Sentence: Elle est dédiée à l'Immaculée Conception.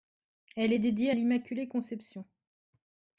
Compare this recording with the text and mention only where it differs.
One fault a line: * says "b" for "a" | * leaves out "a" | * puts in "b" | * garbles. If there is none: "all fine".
all fine